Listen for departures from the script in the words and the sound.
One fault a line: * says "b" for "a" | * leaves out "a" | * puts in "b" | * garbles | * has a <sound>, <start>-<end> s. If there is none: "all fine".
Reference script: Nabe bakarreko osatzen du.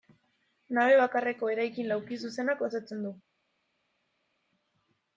* puts in "eraikin laukizuzenak"